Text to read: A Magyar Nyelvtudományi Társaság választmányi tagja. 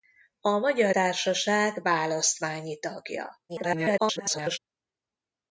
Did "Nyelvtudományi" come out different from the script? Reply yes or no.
yes